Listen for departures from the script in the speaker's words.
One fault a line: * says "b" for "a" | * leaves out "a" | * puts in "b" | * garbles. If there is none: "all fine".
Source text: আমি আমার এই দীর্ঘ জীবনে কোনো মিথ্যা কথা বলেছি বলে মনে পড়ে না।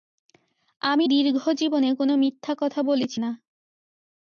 * leaves out "আমার এই"
* leaves out "বলে মনে পড়ে"